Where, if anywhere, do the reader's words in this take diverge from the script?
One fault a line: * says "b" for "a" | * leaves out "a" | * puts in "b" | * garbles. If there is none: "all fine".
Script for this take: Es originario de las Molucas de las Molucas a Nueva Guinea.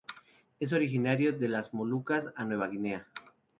* leaves out "de las Molucas"